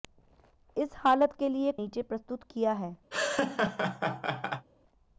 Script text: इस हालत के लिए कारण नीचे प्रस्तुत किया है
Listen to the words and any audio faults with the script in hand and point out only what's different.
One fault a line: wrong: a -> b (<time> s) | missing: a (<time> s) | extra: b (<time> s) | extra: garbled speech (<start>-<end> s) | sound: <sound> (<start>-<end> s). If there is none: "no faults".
missing: कारण (1.7 s)
sound: laugh (3.1-4.7 s)